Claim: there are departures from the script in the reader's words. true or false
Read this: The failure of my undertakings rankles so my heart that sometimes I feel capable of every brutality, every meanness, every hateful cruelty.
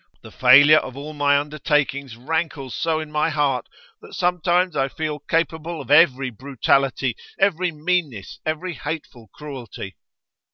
true